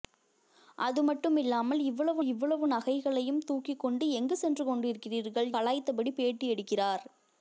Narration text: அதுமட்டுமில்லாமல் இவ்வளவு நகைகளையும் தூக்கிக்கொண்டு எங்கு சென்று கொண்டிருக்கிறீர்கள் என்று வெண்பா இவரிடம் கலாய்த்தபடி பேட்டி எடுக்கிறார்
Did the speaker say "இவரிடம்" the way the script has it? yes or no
no